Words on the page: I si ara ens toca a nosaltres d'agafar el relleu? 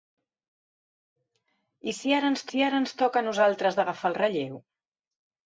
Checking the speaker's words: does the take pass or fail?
fail